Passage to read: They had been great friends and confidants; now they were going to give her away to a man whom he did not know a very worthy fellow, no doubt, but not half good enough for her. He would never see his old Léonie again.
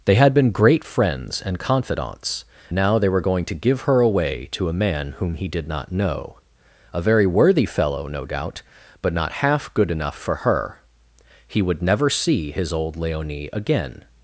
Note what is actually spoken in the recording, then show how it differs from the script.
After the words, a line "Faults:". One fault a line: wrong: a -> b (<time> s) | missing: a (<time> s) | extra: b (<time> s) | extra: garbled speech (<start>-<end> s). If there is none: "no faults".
They had been great friends and confidants; now they were going to give her away to a man whom he did not know a very worthy fellow, no doubt, but not half good enough for her. He would never see his old Léonie again.
Faults:
no faults